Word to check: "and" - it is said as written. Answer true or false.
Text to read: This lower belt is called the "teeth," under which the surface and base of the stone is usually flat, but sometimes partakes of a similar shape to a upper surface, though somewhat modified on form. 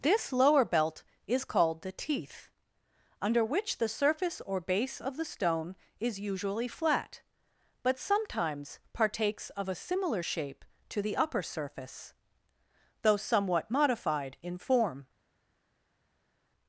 false